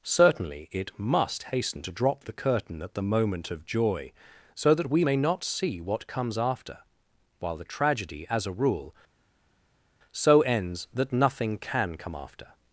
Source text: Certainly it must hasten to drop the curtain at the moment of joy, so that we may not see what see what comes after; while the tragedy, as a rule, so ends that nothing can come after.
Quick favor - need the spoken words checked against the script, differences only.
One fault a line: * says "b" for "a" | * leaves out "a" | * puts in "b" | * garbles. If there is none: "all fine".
* leaves out "see what"